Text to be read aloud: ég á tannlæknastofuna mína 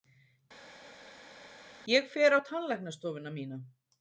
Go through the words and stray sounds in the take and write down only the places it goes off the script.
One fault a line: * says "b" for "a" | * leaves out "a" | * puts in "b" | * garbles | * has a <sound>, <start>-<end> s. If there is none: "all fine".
* puts in "fer"